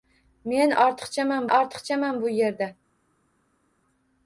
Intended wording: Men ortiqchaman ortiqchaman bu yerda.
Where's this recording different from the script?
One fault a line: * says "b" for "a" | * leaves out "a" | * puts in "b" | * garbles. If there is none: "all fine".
all fine